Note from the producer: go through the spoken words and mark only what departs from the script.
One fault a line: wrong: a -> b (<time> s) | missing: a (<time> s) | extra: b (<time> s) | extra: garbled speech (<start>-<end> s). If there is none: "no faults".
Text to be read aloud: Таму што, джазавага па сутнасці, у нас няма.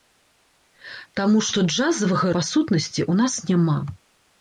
no faults